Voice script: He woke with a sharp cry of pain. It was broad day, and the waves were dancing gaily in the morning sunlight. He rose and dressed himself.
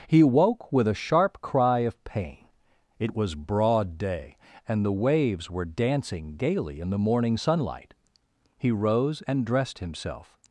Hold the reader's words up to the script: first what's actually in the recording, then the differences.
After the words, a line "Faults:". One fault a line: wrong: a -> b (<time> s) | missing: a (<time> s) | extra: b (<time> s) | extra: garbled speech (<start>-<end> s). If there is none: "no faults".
He woke with a sharp cry of pain. It was broad day, and the waves were dancing gaily in the morning sunlight. He rose and dressed himself.
Faults:
no faults